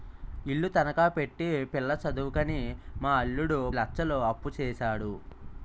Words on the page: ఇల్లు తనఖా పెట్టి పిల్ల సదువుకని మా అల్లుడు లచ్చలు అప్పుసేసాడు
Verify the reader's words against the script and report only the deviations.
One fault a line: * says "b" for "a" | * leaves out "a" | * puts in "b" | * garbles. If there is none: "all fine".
all fine